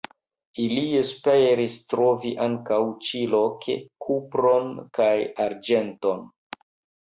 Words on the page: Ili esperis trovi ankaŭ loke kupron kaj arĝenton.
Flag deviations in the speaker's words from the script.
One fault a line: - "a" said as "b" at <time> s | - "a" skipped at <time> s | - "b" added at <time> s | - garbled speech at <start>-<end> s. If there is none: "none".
- "ĉi" added at 3.1 s